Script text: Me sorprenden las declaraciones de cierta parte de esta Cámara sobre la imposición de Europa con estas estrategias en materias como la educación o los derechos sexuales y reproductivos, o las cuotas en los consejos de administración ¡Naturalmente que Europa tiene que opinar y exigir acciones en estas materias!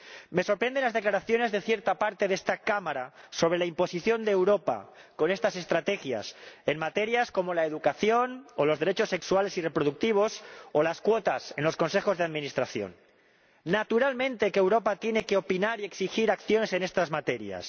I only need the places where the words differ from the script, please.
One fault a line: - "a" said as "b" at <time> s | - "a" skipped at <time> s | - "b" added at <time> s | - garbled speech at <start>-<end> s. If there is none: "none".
none